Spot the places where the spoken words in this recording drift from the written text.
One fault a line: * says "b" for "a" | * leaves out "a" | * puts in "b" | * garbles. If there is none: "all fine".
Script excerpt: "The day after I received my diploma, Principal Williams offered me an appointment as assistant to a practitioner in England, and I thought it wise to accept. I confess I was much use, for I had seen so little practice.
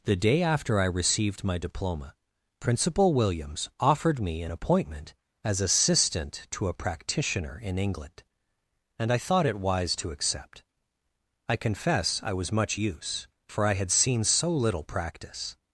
all fine